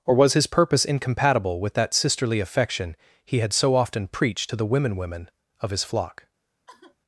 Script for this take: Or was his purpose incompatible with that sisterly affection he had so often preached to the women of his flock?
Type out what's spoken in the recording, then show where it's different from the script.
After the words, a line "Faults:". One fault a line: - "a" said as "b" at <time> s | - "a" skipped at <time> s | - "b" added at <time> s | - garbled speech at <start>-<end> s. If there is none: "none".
Or was his purpose incompatible with that sisterly affection he had so often preached to the women women of his flock?
Faults:
- "women" added at 5.0 s